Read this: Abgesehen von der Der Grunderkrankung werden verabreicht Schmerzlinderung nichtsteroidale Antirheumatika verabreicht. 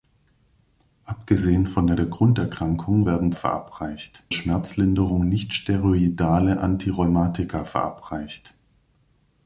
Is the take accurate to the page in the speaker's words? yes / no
yes